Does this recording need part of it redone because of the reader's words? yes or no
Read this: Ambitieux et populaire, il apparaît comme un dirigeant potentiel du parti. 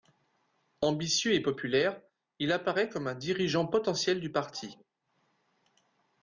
no